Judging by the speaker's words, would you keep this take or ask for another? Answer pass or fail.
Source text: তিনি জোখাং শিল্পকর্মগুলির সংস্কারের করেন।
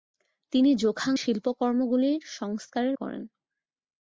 pass